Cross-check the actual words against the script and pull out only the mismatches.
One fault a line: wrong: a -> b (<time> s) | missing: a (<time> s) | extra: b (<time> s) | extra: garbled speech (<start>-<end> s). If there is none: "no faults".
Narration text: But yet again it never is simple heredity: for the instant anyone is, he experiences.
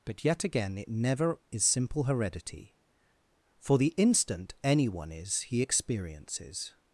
no faults